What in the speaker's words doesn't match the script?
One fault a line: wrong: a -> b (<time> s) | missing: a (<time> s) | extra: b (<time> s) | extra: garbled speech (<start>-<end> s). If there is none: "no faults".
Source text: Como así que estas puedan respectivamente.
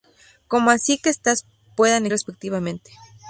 no faults